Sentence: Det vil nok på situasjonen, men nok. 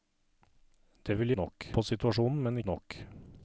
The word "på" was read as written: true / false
true